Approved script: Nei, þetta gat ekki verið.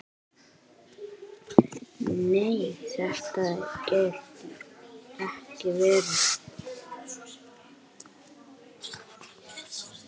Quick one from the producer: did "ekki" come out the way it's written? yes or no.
yes